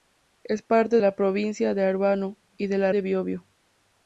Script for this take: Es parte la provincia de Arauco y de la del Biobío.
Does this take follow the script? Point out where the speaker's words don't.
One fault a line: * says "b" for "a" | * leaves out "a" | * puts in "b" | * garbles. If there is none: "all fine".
all fine